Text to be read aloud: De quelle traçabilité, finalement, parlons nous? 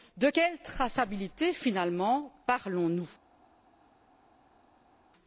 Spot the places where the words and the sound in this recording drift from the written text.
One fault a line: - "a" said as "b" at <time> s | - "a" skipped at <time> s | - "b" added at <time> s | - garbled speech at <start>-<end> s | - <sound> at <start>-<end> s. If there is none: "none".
none